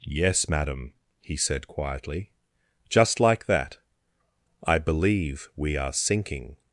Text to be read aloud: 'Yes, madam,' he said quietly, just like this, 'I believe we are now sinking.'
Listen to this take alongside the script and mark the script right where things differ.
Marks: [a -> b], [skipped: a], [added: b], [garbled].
'Yes, madam,' he said quietly, just like [this, -> that] 'I believe we are [skipped: now] sinking.'